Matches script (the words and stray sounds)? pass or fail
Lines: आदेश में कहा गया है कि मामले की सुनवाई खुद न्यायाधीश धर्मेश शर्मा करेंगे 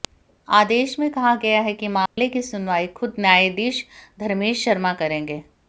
fail